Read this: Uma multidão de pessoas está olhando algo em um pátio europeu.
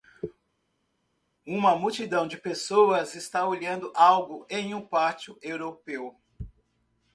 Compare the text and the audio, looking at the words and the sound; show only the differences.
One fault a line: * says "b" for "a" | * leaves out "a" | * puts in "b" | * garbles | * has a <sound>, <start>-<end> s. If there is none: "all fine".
all fine